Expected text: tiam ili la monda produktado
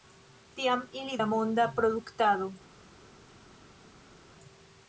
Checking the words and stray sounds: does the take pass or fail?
pass